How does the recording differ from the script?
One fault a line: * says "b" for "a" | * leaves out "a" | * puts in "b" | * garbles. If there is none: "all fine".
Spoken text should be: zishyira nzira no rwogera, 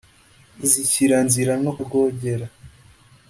all fine